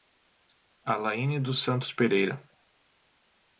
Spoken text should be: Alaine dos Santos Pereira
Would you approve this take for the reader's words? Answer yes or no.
yes